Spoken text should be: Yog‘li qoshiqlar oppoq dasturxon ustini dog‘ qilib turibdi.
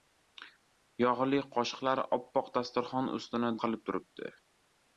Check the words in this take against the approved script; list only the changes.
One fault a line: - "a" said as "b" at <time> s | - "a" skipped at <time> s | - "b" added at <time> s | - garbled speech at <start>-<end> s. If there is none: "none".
- "dog" skipped at 3.5 s